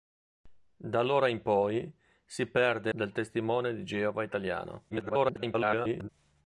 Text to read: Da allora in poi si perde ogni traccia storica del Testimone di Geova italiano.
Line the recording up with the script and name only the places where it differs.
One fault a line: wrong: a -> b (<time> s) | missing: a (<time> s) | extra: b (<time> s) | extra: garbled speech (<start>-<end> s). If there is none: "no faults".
missing: ogni traccia storica (2.9 s)
extra: garbled speech (4.9-6.1 s)